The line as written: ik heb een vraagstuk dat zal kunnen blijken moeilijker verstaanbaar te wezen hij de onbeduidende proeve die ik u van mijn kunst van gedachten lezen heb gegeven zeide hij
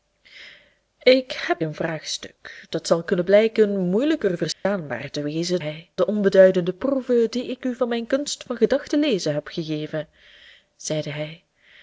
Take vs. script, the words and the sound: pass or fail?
fail